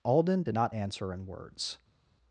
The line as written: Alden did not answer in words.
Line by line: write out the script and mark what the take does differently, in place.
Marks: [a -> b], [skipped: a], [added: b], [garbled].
Alden did not answer in words.